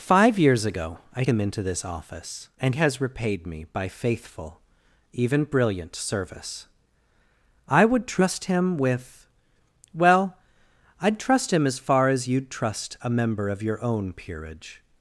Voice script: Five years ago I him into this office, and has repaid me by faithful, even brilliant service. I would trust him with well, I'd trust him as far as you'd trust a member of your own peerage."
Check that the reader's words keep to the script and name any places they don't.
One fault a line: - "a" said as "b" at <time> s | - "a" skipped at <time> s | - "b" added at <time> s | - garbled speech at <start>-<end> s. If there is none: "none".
none